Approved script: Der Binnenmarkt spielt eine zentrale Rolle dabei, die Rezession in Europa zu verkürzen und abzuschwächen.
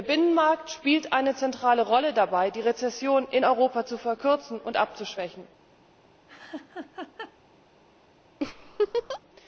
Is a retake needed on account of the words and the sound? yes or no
yes